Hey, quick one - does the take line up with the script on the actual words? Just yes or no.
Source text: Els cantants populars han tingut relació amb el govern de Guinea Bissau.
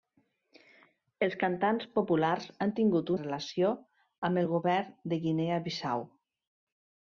yes